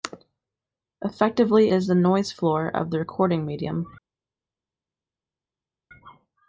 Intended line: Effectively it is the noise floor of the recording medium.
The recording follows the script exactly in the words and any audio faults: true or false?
false